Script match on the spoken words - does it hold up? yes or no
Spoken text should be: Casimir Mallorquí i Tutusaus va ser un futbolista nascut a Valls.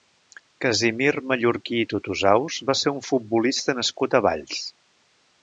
yes